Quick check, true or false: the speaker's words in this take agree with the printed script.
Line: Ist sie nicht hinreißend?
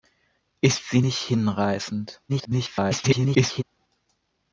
false